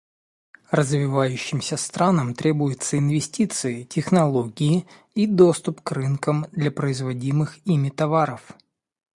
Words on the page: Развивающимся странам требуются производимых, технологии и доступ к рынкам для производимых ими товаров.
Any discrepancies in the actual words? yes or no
yes